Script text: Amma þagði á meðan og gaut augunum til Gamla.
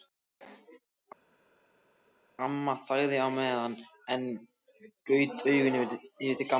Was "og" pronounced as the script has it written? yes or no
no